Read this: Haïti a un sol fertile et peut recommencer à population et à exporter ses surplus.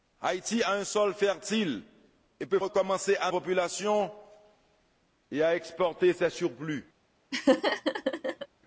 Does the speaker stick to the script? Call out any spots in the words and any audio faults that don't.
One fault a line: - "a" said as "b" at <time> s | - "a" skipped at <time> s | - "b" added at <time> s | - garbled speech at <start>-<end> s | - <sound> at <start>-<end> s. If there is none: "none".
- laugh at 7.3-8.5 s